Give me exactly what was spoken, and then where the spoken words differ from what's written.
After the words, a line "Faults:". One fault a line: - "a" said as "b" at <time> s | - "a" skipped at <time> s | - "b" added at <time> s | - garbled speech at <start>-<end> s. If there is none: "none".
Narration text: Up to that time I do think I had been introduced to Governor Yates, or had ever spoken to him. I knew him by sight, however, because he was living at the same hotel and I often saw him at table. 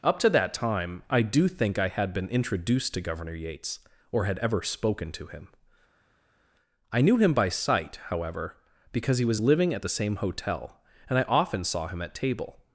Up to that time I do think I had been introduced to Governor Yates, or had ever spoken to him. I knew him by sight, however, because he was living at the same hotel and I often saw him at table.
Faults:
none